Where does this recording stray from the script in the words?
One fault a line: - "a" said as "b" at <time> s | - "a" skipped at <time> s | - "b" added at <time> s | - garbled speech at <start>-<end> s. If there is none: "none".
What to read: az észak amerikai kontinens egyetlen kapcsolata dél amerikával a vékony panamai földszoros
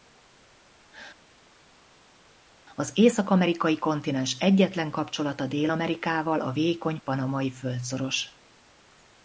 none